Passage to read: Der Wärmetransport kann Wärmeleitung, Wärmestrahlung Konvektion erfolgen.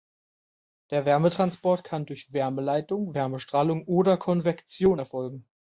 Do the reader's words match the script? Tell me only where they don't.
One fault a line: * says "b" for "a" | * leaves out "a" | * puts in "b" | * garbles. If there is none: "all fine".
* puts in "durch"
* puts in "oder"